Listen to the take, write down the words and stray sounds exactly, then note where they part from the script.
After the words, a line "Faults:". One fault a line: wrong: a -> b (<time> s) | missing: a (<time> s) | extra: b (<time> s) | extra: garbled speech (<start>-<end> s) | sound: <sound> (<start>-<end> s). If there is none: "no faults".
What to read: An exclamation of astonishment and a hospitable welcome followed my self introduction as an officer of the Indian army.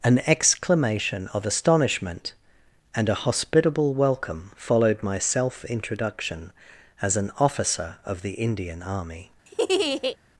An exclamation of astonishment and a hospitable welcome followed my self introduction as an officer of the Indian army.
Faults:
sound: laugh (9.5-10.2 s)